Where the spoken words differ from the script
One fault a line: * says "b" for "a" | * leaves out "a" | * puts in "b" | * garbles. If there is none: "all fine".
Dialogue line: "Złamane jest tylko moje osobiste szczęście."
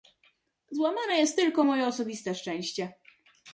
all fine